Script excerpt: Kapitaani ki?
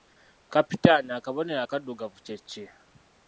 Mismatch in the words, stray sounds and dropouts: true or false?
true